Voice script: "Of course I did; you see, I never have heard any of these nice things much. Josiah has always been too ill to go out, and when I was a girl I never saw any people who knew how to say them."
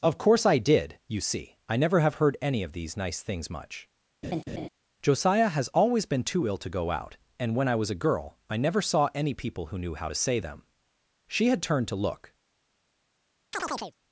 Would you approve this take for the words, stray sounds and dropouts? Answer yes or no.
no